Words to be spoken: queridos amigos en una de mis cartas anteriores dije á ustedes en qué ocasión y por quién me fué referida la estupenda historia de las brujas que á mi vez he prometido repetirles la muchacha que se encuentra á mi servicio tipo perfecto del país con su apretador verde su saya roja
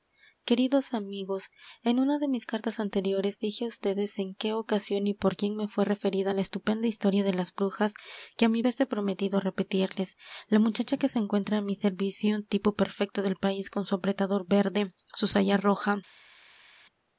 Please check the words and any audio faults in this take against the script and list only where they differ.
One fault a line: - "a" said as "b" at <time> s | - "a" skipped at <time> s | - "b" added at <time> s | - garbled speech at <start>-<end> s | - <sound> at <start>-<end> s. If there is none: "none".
none